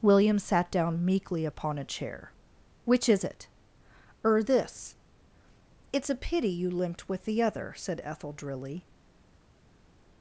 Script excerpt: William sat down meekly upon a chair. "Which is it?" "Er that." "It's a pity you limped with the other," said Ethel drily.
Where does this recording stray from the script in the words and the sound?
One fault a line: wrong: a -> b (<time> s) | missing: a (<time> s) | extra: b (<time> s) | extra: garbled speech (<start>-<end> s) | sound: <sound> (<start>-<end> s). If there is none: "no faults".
wrong: that -> this (4.4 s)